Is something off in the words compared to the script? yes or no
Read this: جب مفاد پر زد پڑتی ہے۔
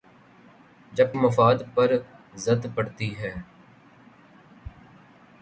no